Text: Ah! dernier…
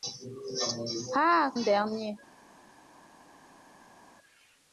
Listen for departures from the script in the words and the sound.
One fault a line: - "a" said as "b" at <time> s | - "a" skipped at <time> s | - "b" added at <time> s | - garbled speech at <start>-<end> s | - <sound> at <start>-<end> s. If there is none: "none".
none